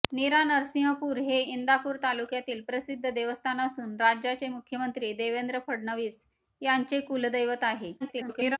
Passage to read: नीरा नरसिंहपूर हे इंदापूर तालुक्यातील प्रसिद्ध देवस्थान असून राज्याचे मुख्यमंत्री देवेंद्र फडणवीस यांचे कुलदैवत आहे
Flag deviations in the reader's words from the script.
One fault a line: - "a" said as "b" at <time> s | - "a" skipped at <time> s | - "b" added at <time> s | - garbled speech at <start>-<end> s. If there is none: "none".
- garbled speech at 8.0-8.6 s